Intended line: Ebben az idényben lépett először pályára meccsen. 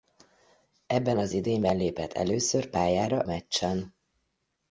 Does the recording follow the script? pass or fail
pass